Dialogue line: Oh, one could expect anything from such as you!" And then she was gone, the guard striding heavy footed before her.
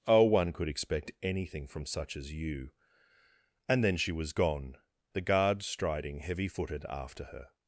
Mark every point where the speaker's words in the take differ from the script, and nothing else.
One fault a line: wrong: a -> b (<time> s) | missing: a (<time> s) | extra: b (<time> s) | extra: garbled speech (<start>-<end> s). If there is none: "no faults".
wrong: before -> after (6.9 s)